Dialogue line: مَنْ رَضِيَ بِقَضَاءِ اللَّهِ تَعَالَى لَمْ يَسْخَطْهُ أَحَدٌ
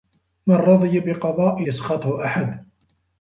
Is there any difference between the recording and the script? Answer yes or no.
yes